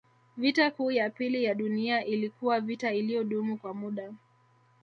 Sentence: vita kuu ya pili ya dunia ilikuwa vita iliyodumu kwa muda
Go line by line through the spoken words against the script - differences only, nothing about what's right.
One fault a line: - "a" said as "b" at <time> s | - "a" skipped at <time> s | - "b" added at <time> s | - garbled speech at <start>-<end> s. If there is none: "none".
none